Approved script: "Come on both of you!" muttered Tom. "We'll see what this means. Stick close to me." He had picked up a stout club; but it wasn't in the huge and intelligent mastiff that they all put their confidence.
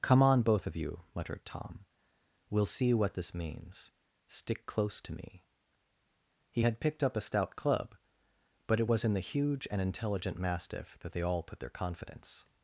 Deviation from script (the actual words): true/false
true